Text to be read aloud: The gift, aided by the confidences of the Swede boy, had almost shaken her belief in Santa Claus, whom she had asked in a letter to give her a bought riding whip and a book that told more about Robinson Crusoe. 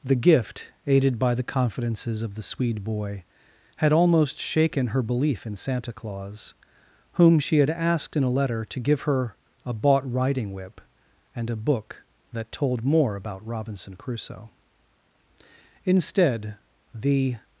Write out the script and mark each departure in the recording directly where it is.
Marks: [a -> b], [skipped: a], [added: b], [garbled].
The gift, aided by the confidences of the Swede boy, had almost shaken her belief in Santa Claus, whom she had asked in a letter to give her a bought riding whip and a book that told more about Robinson Crusoe. [added: Instead the]